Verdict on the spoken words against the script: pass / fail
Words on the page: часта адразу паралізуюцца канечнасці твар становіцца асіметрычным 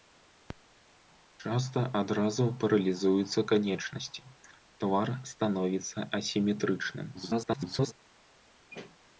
fail